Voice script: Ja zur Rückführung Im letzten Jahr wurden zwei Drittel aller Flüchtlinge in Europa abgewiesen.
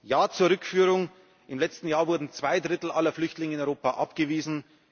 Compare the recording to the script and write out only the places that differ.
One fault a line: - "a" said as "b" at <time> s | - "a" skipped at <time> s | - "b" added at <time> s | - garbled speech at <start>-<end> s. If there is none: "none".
none